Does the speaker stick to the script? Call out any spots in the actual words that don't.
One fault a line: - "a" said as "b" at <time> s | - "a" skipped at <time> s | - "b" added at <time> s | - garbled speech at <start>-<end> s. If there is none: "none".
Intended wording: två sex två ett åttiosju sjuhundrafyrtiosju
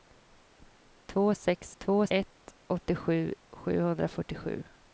none